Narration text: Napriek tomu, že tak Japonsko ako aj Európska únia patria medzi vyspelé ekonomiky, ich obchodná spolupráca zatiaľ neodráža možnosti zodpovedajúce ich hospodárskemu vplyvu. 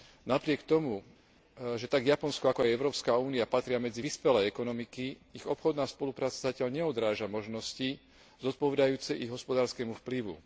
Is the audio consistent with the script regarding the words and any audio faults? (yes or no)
yes